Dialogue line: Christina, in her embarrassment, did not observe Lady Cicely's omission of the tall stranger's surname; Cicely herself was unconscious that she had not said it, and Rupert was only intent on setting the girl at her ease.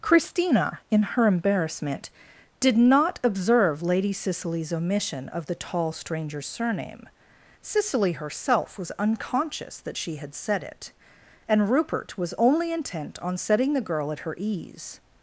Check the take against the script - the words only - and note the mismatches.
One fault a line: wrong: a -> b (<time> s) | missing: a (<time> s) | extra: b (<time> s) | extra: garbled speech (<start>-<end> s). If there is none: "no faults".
missing: not (10.3 s)